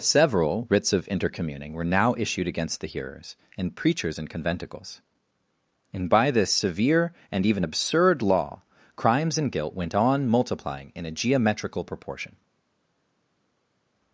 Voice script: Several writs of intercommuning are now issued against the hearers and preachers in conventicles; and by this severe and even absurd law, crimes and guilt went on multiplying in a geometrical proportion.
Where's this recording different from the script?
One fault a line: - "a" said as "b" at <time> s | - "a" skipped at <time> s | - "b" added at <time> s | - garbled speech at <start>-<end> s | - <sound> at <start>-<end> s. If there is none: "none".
- "are" said as "were" at 1.7 s